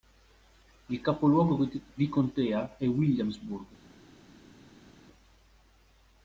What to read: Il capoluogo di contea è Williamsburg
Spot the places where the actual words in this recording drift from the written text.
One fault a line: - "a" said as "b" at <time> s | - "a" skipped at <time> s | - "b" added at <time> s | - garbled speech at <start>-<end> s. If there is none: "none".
none